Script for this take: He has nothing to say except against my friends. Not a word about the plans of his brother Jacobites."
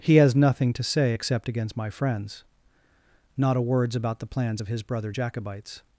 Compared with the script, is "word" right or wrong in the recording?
wrong